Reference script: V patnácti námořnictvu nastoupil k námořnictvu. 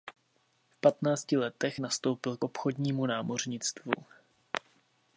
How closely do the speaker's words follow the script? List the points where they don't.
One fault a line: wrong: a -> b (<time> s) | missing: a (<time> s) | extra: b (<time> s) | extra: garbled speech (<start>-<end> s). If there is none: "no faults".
wrong: námořnictvu -> letech (1.4 s)
extra: obchodnímu (2.4 s)